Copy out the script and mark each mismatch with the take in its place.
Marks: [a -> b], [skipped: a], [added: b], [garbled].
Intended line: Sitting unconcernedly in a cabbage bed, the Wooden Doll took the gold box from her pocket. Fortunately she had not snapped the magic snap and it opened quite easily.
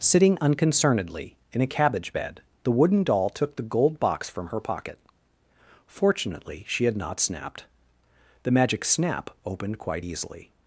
Sitting unconcernedly in a cabbage bed, the Wooden Doll took the gold box from her pocket. Fortunately she had not snapped the magic snap [skipped: and it] opened quite easily.